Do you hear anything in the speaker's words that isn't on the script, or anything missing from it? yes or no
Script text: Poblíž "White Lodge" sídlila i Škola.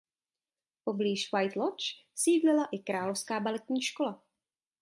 yes